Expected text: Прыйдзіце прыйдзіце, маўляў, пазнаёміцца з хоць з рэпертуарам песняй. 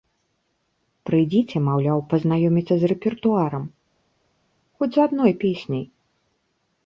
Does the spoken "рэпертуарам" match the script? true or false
false